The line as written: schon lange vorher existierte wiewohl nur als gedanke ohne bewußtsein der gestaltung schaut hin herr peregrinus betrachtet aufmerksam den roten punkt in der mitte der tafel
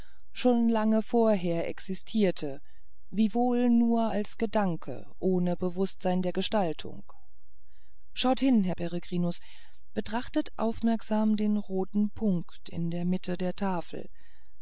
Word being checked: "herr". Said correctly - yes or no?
yes